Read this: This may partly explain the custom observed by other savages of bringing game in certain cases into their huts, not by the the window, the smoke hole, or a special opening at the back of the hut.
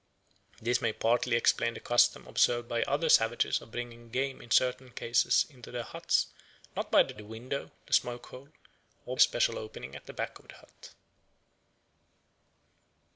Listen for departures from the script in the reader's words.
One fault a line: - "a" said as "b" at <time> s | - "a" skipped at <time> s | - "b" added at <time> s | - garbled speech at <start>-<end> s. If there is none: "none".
none